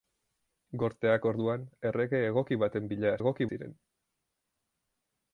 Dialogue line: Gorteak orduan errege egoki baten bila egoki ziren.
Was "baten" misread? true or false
false